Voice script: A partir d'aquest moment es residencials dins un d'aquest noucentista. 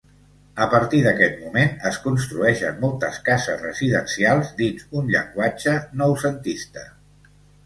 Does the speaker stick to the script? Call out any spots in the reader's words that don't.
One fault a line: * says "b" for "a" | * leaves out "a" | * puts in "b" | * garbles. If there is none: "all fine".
* puts in "construeixen moltes cases"
* says "llenguatge" for "d'aquest"